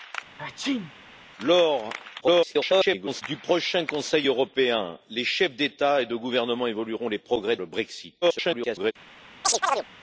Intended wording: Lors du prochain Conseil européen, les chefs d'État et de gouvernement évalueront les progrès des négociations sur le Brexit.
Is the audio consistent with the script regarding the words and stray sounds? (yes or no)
no